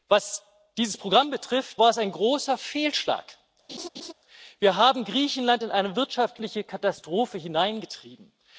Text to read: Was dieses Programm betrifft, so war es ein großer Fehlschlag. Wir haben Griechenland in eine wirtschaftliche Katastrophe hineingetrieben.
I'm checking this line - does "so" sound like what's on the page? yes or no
no